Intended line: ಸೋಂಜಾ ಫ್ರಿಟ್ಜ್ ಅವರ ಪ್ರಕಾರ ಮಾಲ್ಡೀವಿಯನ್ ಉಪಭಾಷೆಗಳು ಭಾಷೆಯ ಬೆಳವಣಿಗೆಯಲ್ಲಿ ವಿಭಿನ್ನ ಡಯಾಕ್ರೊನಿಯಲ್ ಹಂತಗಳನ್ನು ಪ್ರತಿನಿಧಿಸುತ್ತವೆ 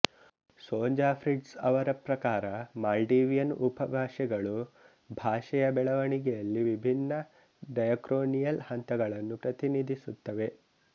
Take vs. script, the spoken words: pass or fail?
pass